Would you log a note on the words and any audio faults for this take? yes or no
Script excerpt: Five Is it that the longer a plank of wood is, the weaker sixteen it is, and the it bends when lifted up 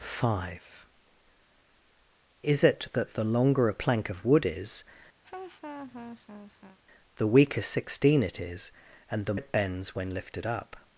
yes